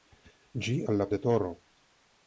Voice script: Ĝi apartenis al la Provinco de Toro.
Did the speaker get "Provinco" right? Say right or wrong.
wrong